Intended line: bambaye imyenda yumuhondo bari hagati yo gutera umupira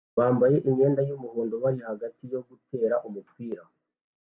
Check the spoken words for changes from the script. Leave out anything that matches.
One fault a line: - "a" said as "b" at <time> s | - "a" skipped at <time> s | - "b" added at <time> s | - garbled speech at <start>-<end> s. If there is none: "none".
none